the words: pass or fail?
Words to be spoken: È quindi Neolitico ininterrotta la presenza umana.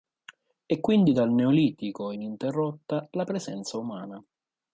fail